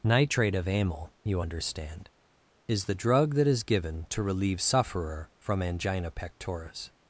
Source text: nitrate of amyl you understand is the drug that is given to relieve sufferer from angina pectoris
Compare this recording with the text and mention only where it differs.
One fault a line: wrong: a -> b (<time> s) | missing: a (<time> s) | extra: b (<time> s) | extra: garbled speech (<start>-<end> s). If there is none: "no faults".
no faults